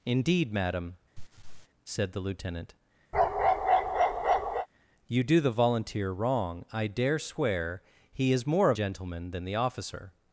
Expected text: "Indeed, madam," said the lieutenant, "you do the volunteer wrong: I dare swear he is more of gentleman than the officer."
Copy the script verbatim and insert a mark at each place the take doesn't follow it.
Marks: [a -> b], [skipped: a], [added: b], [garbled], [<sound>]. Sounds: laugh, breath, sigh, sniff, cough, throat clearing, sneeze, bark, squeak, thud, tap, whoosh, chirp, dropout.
"Indeed, madam," [laugh] said the lieutenant, [bark] "you do the volunteer wrong: I dare swear he is more of gentleman than the officer."